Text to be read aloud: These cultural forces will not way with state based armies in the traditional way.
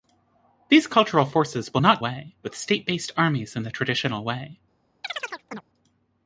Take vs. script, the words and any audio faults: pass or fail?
fail